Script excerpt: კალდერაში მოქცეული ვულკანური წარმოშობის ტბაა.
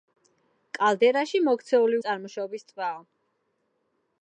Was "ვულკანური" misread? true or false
true